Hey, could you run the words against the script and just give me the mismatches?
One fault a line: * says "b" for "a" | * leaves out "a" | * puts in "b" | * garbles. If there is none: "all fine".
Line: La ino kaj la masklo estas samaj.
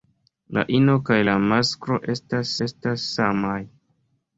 * puts in "estas"